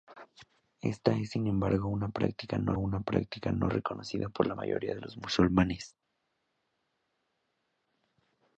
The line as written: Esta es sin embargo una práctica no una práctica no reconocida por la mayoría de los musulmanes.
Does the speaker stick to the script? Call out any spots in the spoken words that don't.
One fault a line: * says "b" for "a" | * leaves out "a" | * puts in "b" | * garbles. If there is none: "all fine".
all fine